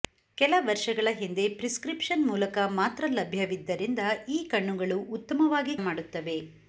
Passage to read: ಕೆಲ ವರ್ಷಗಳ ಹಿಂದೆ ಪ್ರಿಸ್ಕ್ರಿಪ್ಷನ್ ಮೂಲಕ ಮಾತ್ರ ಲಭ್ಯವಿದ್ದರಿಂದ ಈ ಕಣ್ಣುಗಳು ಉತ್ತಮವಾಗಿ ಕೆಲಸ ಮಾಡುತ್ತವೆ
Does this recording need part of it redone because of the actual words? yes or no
yes